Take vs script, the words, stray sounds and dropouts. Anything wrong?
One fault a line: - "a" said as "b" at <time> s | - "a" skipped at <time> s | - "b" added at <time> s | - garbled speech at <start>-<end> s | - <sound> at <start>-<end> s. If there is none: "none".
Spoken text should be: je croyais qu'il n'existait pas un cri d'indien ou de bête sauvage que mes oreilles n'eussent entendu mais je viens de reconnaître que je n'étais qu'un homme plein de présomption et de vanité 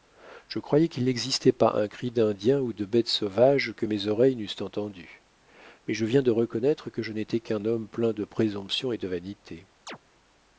- chirp at 9.9-10.0 s